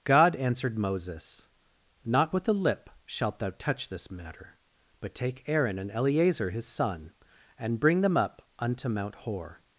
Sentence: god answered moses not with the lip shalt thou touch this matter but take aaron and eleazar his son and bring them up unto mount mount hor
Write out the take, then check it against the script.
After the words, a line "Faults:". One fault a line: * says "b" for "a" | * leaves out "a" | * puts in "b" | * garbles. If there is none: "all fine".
god answered moses not with the lip shalt thou touch this matter but take aaron and eleazar his son and bring them up unto mount hor
Faults:
* leaves out "mount"